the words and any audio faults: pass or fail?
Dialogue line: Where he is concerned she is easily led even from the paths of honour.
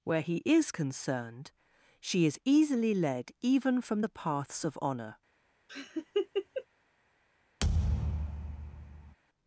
fail